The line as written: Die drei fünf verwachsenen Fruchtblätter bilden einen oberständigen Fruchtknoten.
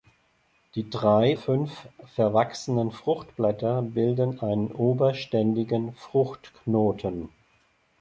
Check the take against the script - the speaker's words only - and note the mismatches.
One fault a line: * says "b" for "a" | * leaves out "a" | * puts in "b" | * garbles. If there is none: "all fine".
all fine